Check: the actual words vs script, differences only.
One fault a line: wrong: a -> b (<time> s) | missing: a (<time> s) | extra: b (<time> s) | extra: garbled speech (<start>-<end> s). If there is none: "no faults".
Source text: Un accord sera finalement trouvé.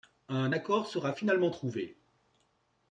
no faults